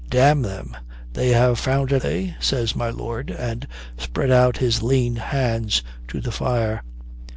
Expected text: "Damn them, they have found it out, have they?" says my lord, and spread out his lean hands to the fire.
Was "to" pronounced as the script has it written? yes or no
yes